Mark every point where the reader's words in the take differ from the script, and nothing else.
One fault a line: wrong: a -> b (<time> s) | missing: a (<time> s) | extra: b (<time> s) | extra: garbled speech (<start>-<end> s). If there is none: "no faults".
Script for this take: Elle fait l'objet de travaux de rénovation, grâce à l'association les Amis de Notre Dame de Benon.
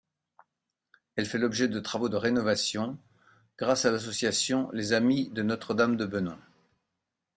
no faults